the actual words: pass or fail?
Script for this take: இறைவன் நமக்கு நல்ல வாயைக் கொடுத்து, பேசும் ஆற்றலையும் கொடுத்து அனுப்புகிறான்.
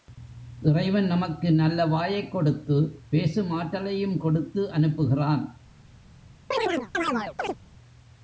pass